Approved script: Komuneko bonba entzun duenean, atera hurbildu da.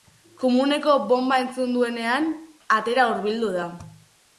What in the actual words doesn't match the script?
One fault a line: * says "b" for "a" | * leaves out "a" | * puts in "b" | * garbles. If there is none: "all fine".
all fine